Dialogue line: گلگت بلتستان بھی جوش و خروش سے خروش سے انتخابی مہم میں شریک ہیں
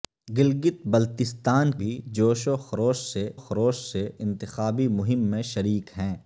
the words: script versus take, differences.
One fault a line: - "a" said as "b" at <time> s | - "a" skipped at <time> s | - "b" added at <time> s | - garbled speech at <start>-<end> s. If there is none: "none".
none